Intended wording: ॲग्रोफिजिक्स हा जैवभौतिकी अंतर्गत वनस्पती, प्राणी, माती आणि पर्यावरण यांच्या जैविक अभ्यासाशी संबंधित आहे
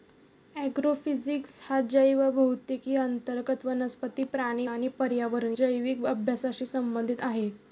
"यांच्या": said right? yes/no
no